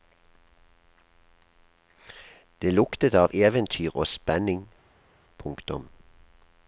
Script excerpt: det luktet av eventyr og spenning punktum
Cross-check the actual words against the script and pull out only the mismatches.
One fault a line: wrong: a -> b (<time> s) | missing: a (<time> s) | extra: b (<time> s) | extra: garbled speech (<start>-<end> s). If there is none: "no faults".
no faults